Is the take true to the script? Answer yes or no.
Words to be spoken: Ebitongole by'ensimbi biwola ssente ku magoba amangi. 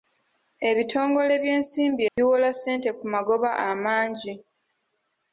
yes